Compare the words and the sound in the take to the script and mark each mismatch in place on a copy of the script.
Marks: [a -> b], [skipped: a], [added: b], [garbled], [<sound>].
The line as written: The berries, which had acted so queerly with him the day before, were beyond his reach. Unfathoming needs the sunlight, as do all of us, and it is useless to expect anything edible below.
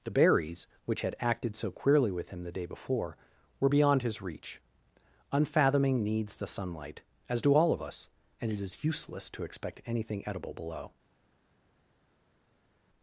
The berries, which had acted so queerly with him the day before, were beyond his reach. Unfathoming needs the sunlight, as do all of us, and it is useless to expect anything edible below.